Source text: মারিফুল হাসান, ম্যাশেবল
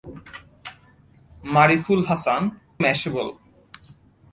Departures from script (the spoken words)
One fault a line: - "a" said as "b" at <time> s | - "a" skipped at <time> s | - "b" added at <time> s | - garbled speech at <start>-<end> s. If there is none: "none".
none